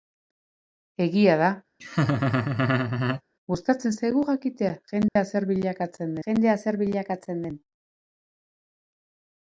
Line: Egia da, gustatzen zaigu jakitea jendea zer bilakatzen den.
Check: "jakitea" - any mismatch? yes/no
no